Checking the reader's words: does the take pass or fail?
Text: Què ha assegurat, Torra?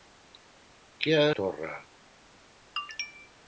fail